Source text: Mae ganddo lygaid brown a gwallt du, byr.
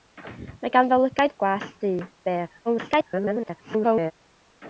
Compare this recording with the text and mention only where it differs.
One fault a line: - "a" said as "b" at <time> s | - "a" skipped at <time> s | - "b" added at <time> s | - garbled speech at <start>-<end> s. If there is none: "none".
- "brown" skipped at 1.4 s
- garbled speech at 2.7-4.1 s